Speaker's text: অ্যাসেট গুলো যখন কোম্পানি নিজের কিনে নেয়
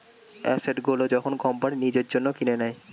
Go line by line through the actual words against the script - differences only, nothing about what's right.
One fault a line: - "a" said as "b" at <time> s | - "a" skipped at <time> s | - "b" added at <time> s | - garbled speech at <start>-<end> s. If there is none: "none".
- "জন্য" added at 2.1 s